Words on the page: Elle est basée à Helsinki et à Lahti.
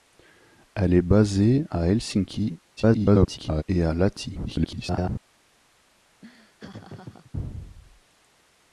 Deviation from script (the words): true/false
true